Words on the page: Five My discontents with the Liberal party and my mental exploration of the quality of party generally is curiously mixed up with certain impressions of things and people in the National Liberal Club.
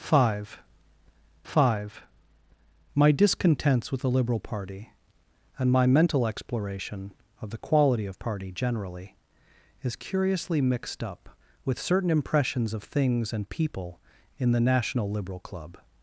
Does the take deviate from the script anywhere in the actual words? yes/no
yes